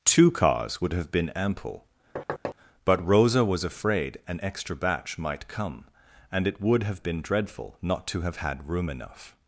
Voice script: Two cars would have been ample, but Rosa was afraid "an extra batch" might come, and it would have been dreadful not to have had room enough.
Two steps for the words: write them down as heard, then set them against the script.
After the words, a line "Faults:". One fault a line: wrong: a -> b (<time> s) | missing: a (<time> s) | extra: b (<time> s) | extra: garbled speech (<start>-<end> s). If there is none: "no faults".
Two cars would have been ample, but Rosa was afraid "an extra batch" might come, and it would have been dreadful not to have had room enough.
Faults:
no faults